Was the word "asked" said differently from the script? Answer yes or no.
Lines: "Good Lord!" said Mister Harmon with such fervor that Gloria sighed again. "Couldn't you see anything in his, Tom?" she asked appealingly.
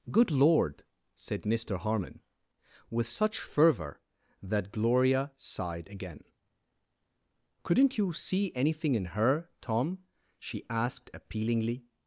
no